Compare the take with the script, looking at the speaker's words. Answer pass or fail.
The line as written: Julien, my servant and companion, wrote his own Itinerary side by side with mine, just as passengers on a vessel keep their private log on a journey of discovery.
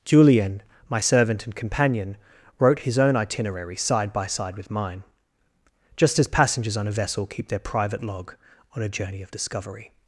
pass